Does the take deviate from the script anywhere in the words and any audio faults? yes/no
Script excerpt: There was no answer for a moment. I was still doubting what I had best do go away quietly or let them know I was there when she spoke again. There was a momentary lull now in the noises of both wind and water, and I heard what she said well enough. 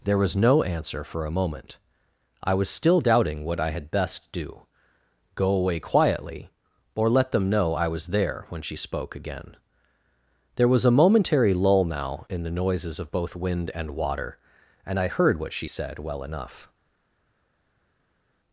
no